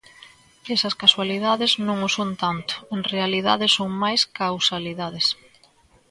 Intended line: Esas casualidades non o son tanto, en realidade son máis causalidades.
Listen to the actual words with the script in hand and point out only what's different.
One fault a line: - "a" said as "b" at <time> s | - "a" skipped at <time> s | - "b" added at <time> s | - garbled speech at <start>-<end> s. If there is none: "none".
none